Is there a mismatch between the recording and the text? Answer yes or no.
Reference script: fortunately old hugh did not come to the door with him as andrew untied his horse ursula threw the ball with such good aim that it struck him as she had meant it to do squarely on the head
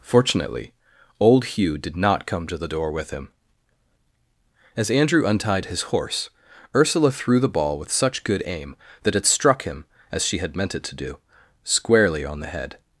no